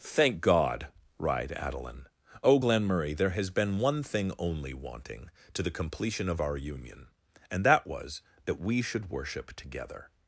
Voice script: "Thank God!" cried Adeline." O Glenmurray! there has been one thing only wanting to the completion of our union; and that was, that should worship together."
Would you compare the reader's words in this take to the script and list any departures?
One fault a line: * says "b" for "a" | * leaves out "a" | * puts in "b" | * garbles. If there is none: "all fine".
* puts in "we"